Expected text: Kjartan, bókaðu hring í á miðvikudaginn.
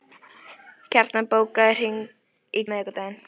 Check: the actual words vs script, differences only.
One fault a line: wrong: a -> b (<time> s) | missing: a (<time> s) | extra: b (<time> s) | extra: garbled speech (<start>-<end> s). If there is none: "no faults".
no faults